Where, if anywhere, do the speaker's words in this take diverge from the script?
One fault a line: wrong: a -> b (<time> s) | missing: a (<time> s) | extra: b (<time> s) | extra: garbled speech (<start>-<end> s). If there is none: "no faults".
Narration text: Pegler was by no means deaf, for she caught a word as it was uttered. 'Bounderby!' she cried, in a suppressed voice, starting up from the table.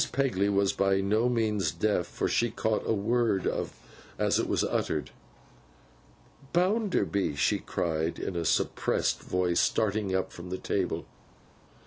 no faults